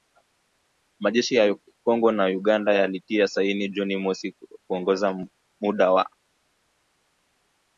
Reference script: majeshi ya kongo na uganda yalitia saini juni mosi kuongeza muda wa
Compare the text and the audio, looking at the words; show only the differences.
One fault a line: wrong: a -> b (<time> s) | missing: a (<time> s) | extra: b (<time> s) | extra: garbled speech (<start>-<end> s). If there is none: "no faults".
no faults